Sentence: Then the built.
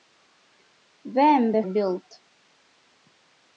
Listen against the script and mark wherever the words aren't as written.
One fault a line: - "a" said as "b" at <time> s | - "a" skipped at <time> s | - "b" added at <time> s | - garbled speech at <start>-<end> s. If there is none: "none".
none